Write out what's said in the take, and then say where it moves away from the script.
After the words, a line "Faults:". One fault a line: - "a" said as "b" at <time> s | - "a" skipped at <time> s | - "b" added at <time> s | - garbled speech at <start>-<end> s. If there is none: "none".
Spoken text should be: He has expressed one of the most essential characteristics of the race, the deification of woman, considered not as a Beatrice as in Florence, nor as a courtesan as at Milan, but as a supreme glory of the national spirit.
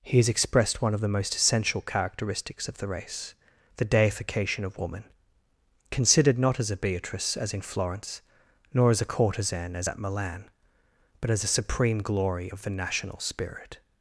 He has expressed one of the most essential characteristics of the race, the deification of woman, considered not as a Beatrice as in Florence, nor as a courtesan as at Milan, but as a supreme glory of the national spirit.
Faults:
none